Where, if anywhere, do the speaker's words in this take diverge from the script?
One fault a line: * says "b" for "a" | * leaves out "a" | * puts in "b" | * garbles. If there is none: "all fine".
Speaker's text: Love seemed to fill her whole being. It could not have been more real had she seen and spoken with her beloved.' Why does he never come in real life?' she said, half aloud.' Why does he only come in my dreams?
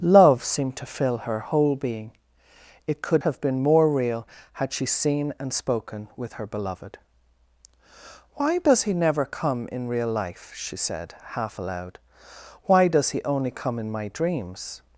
* leaves out "not"